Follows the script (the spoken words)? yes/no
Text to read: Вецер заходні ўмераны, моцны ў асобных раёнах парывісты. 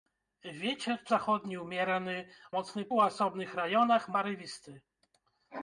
yes